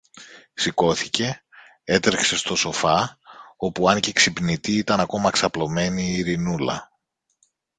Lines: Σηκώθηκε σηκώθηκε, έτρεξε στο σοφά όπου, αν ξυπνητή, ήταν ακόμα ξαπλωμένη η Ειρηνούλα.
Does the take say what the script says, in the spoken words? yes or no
no